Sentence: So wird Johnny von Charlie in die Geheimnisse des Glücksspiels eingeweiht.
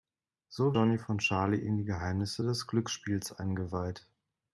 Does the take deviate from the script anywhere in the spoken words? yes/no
yes